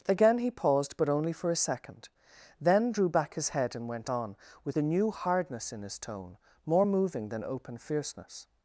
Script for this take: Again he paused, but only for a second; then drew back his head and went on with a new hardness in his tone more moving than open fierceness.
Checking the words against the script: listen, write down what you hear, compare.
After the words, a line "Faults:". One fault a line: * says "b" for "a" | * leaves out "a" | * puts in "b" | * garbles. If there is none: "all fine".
Again he paused, but only for a second; then drew back his head and went on with a new hardness in his tone more moving than open fierceness.
Faults:
all fine